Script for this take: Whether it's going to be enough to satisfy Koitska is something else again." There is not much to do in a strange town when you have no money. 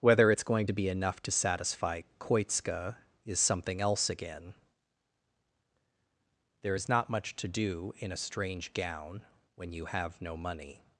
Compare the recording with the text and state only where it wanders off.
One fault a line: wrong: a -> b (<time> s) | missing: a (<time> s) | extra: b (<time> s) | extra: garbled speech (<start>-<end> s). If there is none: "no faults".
wrong: town -> gown (8.7 s)